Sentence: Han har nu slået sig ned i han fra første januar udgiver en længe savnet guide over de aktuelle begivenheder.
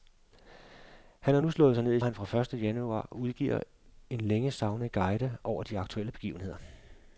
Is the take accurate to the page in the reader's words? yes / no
yes